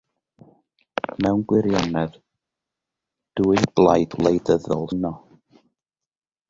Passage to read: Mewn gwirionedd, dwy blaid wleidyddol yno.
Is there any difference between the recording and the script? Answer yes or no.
no